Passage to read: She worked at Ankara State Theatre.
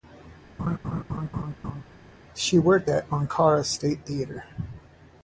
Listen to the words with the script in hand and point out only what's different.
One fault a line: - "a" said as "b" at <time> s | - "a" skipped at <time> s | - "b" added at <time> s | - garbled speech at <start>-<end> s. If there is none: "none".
none